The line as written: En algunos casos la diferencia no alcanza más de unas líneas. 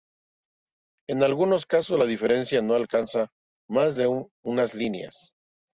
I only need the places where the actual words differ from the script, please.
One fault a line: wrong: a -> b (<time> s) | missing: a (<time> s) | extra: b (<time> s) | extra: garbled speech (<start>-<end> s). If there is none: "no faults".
no faults